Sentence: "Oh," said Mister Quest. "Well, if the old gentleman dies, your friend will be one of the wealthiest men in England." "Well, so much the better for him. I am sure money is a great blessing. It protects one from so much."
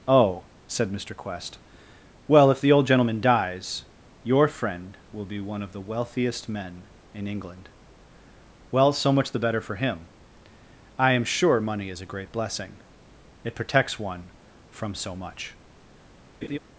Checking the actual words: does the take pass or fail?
pass